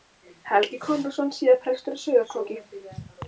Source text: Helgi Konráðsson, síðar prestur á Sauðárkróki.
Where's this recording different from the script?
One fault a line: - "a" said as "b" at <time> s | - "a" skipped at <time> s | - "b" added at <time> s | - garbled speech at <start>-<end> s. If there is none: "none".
none